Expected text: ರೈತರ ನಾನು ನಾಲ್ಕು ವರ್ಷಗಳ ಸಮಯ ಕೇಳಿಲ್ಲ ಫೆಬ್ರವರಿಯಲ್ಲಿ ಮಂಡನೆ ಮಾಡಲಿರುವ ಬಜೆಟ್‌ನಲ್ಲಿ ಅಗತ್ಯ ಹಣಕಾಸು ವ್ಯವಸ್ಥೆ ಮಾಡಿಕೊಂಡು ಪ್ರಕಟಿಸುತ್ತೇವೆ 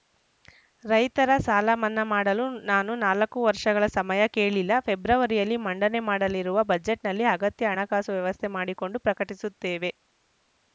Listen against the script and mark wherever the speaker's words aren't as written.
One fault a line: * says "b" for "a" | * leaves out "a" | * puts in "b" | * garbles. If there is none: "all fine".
* puts in "ಸಾಲ ಮನ್ನಾ ಮಾಡಲು"